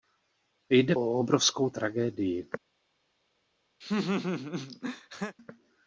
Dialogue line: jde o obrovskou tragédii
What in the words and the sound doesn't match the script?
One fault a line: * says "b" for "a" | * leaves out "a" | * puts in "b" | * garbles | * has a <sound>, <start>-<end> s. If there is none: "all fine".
* has a laugh, 3.8-5.4 s